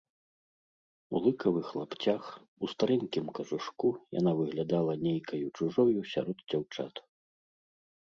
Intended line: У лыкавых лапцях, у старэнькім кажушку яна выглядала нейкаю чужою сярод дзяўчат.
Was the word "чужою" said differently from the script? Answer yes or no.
no